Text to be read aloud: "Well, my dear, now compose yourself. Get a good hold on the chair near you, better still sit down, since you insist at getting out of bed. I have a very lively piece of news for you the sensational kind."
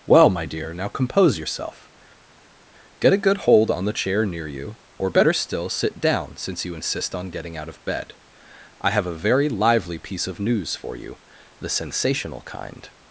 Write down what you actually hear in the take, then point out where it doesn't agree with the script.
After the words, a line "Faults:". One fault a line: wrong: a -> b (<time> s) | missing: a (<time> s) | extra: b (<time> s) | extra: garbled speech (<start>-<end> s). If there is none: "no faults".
"Well, my dear, now compose yourself. Get a good hold on the chair near you, or better still sit down, since you insist on getting out of bed. I have a very lively piece of news for you the sensational kind."
Faults:
extra: or (5.0 s)
wrong: at -> on (7.2 s)